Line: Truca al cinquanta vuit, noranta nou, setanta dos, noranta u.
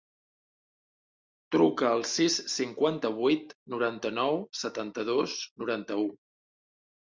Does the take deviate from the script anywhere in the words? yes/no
yes